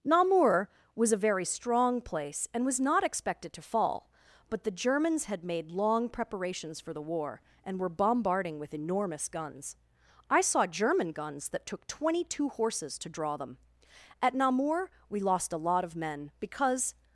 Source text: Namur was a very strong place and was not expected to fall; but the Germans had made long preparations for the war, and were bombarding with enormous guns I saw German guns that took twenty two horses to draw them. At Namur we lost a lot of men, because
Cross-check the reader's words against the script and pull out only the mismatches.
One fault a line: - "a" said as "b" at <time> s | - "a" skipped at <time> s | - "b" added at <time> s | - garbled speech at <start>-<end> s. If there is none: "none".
none